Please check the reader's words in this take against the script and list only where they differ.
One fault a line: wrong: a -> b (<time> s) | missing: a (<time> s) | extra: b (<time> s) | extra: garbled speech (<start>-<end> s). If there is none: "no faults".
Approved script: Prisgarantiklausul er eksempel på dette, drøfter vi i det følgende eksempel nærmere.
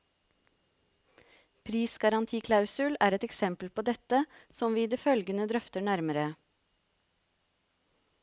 extra: et (3.2 s)
wrong: drøfter -> som (4.6 s)
wrong: eksempel -> drøfter (5.5 s)